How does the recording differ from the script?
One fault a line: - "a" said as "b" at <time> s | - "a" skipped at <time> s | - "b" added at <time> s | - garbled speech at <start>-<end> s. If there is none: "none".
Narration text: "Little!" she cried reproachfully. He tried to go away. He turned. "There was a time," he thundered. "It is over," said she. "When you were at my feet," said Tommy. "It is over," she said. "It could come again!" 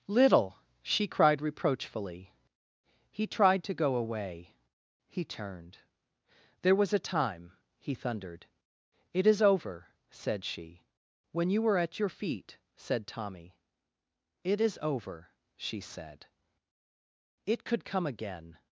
- "my" said as "your" at 12.0 s